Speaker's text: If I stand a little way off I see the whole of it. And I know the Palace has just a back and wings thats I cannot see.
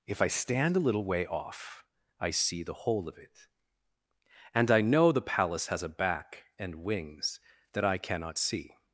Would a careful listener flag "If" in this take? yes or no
no